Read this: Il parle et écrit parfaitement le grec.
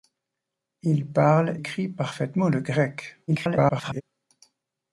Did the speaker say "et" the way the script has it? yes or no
no